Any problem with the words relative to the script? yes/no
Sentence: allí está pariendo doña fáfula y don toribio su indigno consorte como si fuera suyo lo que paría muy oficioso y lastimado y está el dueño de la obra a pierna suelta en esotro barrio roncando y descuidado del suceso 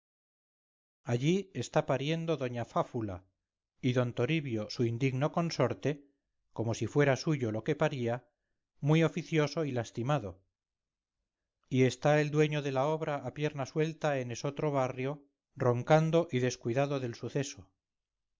no